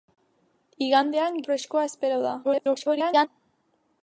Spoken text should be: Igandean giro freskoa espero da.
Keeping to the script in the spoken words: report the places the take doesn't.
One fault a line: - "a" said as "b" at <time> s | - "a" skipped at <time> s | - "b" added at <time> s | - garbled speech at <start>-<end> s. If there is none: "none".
- "giro" skipped at 1.4 s
- garbled speech at 2.4-3.3 s